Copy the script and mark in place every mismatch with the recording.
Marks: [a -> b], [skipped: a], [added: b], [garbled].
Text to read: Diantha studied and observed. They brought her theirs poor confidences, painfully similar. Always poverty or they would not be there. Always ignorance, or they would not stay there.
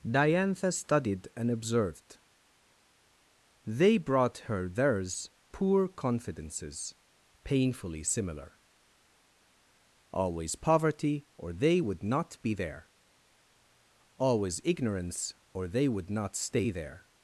Diantha studied and observed. They brought her theirs poor confidences, painfully similar. Always poverty or they would not be there. Always ignorance, or they would not stay there.